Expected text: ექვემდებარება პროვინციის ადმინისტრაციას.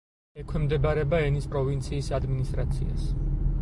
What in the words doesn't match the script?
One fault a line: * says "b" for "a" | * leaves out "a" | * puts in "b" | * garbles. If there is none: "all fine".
* puts in "ენის"